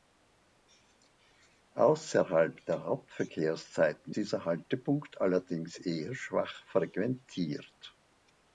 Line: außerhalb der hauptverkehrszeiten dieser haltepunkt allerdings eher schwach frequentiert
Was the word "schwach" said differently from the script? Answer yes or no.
no